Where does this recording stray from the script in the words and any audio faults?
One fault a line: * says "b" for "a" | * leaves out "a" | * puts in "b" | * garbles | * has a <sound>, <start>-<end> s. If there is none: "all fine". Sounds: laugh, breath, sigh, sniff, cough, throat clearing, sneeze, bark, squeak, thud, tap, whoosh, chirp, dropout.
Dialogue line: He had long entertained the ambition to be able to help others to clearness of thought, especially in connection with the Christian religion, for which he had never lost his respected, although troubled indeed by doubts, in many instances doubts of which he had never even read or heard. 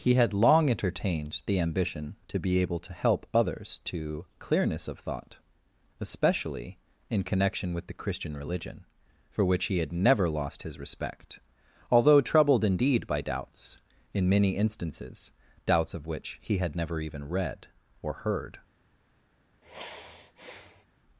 * says "respect" for "respected"
* has a sigh, 19.6-20.9 s